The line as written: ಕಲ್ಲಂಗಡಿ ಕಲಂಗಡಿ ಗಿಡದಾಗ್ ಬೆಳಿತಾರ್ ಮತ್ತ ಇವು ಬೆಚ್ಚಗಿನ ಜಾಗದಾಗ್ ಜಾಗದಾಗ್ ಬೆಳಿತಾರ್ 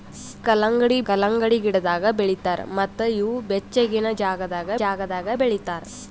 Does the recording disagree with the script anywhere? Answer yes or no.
no